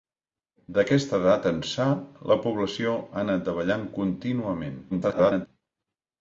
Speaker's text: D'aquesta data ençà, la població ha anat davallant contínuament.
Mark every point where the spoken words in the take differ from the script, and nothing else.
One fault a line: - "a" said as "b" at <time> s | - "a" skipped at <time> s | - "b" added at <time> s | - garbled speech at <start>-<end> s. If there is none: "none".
- garbled speech at 4.9-5.5 s